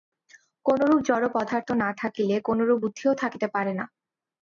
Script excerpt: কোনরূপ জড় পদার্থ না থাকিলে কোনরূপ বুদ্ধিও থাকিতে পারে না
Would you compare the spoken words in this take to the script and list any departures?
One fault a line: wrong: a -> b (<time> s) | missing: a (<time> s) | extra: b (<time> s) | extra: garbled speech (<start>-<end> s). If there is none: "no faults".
no faults